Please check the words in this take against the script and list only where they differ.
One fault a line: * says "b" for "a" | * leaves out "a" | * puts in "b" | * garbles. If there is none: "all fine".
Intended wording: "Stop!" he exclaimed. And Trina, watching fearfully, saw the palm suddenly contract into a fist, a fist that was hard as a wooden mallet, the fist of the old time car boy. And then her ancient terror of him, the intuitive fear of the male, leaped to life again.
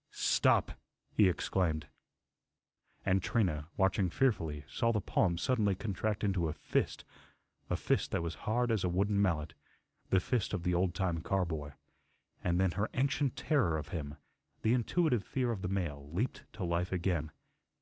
all fine